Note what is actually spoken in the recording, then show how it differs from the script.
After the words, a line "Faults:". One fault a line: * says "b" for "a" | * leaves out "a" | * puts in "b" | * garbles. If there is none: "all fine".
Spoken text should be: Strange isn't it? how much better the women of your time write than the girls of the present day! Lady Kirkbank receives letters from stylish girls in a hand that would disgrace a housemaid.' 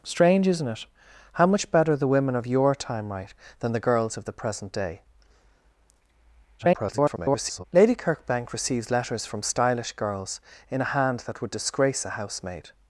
Strange isn't it? how much better the women of your time write than the girls of the present day! [garbled] Lady Kirkbank receives letters from stylish girls in a hand that would disgrace a housemaid.'
Faults:
* garbles